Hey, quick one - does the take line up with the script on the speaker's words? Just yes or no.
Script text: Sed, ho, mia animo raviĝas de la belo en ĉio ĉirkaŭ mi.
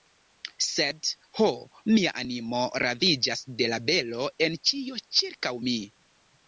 yes